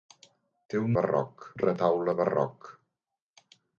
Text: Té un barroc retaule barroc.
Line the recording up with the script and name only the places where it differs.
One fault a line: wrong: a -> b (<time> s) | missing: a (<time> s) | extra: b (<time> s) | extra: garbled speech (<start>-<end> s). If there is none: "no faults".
no faults